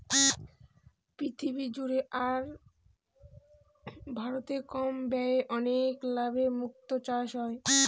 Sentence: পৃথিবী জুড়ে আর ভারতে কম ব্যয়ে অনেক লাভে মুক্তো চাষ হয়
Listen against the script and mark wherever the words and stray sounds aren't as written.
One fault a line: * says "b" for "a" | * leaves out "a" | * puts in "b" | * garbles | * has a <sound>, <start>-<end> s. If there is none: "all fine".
all fine